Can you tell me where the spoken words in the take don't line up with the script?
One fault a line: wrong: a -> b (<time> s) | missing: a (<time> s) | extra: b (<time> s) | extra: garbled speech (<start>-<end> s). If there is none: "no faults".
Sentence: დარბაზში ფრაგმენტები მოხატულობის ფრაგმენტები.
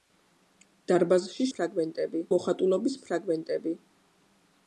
no faults